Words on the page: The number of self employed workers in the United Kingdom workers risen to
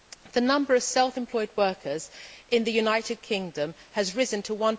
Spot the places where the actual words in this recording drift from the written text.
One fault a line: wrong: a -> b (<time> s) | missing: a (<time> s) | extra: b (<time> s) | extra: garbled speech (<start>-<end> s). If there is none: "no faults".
wrong: workers -> has (3.9 s)